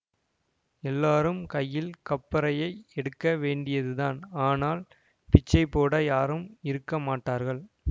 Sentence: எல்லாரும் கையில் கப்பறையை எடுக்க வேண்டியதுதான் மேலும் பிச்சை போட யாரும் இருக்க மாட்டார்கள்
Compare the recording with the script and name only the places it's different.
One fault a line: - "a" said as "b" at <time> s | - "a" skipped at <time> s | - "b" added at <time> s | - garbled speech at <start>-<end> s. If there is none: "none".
- "மேலும்" said as "ஆனால்" at 4.5 s